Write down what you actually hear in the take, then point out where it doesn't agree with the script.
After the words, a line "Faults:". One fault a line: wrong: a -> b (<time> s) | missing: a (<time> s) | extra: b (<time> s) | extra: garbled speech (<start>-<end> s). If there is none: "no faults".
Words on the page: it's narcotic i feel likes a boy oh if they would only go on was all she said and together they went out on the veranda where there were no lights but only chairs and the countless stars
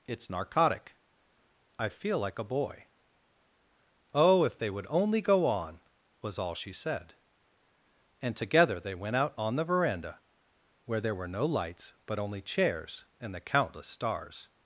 it's narcotic i feel like a boy oh if they would only go on was all she said and together they went out on the veranda where there were no lights but only chairs and the countless stars
Faults:
wrong: likes -> like (2.2 s)